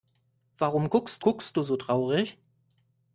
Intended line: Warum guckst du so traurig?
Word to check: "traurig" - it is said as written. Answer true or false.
true